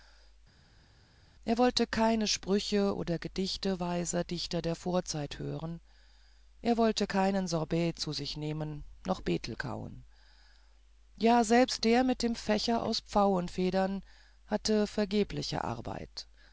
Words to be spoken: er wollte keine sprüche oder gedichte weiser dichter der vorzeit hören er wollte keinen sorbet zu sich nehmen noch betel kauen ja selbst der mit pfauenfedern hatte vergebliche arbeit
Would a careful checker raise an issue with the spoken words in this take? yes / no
yes